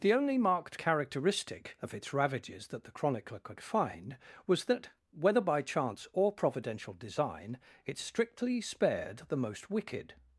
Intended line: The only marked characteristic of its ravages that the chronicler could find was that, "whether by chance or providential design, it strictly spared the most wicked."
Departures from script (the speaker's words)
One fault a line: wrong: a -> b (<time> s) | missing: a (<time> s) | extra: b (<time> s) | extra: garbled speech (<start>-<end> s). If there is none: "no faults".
no faults